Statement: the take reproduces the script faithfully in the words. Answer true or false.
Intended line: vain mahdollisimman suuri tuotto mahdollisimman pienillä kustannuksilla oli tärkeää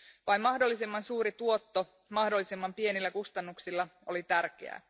true